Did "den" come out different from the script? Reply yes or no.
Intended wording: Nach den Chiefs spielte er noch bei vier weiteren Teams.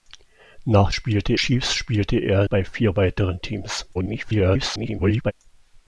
yes